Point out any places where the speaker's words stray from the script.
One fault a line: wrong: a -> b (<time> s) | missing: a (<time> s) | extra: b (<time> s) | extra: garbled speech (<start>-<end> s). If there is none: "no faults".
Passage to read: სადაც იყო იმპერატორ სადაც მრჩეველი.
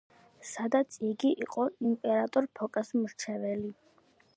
extra: იგი (1.1 s)
wrong: სადაც -> ფოკას (2.6 s)